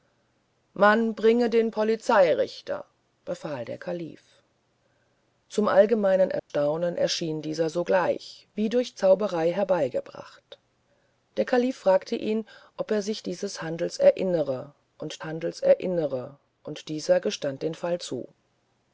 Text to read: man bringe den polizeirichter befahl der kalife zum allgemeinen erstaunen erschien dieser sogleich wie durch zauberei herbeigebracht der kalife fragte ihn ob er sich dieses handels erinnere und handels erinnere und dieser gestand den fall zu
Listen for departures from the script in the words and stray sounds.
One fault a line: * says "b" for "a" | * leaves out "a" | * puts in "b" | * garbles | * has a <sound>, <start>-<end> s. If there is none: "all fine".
* has a dropout, 6.4-6.5 s